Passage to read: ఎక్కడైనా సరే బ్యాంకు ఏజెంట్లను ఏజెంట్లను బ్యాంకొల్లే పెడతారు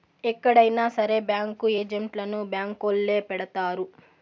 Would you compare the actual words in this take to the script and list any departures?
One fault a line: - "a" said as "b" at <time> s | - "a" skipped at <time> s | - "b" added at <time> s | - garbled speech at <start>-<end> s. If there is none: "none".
- "ఏజెంట్లను" skipped at 2.4 s